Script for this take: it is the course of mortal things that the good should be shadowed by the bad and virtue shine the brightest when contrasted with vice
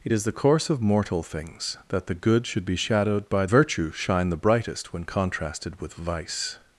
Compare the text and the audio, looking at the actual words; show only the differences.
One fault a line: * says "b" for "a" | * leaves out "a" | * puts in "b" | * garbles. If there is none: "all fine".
* leaves out "the bad and"